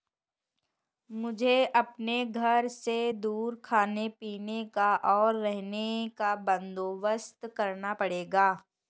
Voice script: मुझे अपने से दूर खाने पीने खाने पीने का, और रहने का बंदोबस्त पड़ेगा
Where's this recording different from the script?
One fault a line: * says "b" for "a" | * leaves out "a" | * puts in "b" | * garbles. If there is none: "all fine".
* puts in "घर"
* leaves out "खाने पीने"
* puts in "करना"